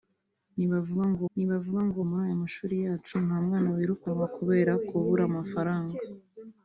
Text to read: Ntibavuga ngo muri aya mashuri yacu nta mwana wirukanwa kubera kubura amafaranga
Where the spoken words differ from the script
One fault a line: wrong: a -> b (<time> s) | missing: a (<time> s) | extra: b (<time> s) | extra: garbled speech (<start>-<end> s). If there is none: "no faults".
extra: ntibavuga ngo (1.3 s)